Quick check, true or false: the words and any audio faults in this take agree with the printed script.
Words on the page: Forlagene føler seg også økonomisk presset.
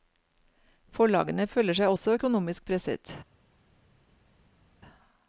true